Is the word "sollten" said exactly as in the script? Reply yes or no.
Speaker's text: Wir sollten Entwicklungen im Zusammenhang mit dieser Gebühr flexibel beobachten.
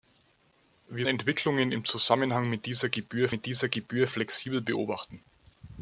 no